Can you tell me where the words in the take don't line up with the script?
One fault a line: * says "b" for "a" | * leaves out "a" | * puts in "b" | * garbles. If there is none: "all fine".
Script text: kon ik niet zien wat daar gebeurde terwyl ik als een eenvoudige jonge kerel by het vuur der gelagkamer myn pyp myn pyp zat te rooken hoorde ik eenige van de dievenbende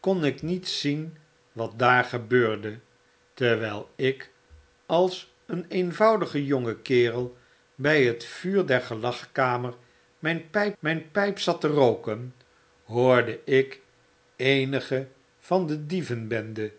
all fine